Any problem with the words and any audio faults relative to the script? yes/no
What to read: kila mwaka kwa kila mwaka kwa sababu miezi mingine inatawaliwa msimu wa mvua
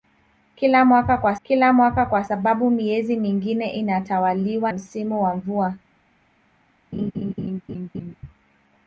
yes